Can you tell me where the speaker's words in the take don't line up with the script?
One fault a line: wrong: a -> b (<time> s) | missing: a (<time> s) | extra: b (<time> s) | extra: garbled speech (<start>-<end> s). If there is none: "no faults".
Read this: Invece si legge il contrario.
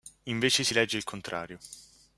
no faults